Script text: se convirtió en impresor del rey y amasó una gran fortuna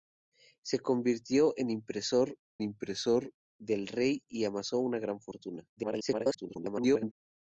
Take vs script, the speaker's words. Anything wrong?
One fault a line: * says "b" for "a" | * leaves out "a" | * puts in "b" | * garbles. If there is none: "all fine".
* puts in "impresor"
* garbles